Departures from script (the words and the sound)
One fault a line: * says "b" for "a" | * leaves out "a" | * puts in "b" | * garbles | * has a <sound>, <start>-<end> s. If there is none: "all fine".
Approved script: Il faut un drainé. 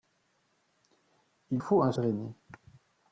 all fine